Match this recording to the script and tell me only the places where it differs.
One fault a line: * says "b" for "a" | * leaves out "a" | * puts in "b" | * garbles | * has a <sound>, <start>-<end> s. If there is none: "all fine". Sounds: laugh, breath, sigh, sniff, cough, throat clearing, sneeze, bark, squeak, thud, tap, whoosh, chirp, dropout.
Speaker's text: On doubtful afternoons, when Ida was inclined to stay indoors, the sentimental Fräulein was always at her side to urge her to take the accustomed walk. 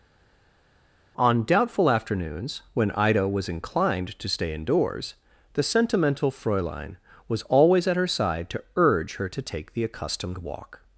all fine